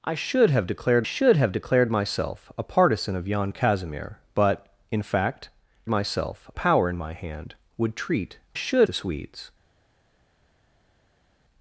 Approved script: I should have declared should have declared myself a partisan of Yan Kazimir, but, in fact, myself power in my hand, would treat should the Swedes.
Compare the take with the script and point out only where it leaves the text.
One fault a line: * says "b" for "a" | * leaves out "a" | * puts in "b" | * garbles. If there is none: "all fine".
all fine